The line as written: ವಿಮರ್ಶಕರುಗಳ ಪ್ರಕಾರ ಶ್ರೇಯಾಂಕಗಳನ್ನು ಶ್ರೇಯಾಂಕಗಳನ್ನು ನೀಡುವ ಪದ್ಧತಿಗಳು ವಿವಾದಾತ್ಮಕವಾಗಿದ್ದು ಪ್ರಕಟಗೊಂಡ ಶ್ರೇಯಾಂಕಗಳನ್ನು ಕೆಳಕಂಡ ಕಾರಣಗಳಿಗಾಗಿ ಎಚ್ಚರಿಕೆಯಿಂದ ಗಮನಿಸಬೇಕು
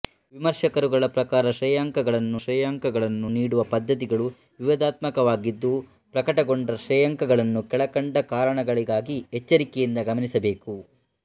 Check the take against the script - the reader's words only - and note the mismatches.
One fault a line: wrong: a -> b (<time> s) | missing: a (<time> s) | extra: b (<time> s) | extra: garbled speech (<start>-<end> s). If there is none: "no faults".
no faults